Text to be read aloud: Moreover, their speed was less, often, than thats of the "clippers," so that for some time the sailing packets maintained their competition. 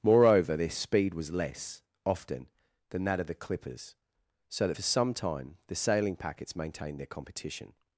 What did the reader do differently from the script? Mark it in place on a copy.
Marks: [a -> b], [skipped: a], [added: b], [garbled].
Moreover, their speed was less, often, than [thats -> that] of the "clippers," so that for some time the sailing packets maintained their competition.